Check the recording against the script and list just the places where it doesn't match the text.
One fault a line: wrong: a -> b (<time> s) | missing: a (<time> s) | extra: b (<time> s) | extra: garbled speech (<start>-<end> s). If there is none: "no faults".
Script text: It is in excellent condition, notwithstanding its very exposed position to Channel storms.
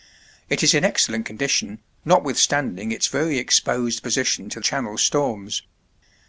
no faults